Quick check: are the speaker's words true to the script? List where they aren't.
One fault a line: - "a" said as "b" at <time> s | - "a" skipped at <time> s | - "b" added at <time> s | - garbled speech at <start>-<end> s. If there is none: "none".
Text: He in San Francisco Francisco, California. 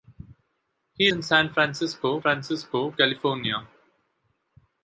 none